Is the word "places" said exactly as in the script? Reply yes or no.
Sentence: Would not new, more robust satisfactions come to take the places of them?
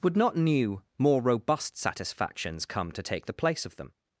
no